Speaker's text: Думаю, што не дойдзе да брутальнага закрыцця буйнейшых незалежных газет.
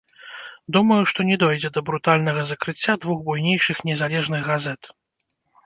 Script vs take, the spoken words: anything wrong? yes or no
yes